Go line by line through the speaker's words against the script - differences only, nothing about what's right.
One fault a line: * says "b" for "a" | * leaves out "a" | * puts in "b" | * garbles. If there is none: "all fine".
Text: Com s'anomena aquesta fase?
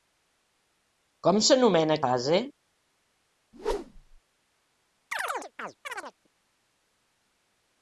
* leaves out "aquesta"